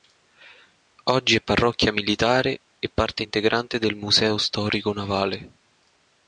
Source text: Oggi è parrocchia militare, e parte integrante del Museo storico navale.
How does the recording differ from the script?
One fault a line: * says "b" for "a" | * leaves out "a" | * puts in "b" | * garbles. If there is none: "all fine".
all fine